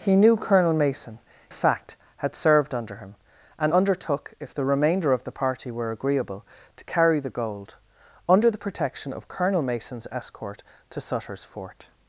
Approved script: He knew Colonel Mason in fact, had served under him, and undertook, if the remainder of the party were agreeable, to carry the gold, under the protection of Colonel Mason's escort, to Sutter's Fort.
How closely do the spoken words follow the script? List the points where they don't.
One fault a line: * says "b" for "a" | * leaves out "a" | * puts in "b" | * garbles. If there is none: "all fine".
* leaves out "in"